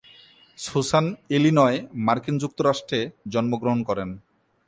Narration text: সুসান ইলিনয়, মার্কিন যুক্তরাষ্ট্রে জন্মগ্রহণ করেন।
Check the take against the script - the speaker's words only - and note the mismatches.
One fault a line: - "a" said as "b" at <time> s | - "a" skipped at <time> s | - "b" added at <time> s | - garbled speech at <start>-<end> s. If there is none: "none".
none